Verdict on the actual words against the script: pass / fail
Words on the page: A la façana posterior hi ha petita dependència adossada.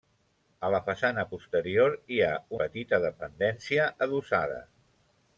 pass